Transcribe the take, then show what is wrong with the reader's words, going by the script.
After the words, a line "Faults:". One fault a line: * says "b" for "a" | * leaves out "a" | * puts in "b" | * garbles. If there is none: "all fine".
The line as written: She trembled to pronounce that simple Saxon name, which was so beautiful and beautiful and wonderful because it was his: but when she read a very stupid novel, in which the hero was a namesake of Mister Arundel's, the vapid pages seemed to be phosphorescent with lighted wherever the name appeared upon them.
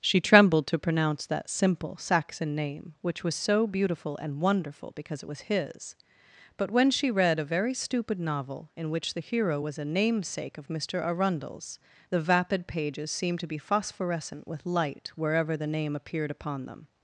She trembled to pronounce that simple Saxon name, which was so beautiful and wonderful because it was his: but when she read a very stupid novel, in which the hero was a namesake of Mister Arundel's, the vapid pages seemed to be phosphorescent with light wherever the name appeared upon them.
Faults:
* leaves out "beautiful and"
* says "light" for "lighted"